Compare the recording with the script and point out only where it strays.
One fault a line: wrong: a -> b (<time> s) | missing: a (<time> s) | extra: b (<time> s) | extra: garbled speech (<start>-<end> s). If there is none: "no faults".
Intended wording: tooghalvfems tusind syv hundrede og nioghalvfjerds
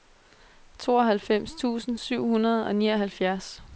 no faults